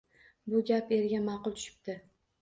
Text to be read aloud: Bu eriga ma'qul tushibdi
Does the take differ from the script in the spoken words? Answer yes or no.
yes